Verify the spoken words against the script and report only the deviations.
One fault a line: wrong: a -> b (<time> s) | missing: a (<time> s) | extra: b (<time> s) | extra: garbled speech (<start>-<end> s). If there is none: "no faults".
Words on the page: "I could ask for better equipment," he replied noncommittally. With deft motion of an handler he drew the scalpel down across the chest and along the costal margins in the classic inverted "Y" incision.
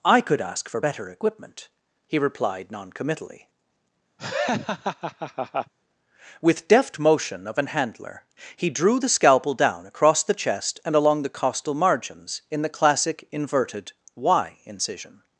no faults